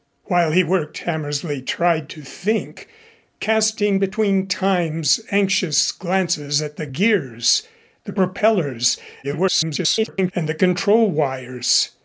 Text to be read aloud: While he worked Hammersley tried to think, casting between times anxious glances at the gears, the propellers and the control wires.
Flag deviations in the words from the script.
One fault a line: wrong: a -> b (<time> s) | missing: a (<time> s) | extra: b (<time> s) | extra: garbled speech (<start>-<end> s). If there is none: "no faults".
extra: garbled speech (9.2-10.3 s)